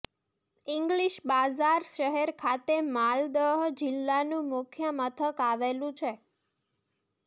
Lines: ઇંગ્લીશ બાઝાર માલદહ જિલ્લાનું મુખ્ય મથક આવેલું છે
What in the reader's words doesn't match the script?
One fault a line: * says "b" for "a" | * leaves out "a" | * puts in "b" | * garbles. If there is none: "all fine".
* puts in "શહેર ખાતે"